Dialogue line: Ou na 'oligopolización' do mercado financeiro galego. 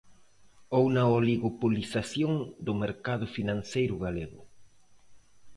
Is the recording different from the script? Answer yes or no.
no